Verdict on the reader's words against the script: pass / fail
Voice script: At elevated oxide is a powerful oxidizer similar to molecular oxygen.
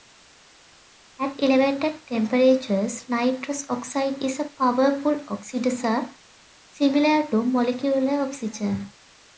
fail